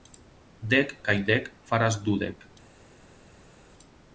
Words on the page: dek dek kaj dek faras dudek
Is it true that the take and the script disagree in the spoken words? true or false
true